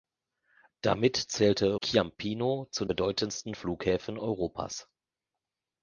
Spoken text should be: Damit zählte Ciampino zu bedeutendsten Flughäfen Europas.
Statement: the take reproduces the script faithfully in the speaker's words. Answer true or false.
true